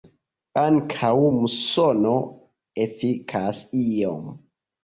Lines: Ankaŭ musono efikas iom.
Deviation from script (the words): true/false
false